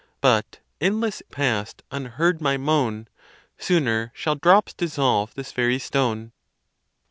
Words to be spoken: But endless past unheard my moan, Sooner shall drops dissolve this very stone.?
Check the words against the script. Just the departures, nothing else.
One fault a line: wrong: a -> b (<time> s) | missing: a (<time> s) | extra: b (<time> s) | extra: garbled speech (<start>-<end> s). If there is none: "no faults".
no faults